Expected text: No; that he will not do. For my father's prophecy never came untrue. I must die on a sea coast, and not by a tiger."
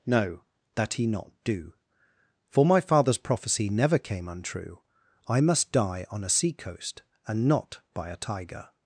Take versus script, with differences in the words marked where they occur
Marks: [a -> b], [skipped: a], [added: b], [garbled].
No; that he [skipped: will] not do. For my father's prophecy never came untrue. I must die on a sea coast, and not by a tiger."